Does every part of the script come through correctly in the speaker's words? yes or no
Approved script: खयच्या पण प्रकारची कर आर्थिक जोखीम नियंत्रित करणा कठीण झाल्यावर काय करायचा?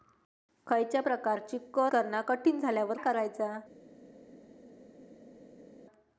no